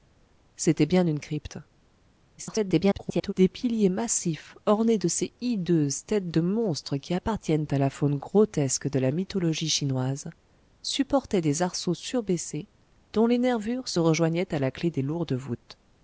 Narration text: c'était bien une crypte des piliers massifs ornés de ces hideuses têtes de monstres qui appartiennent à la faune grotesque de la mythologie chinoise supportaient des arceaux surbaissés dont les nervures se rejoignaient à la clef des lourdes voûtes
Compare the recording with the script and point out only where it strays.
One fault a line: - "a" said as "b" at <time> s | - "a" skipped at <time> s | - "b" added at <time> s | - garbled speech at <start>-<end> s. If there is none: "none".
- garbled speech at 2.4-3.3 s